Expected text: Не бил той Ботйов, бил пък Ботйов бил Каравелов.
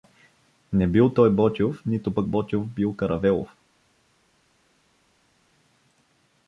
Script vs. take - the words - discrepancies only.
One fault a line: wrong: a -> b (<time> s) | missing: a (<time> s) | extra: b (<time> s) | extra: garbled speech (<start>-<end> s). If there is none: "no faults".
wrong: бил -> нито (1.9 s)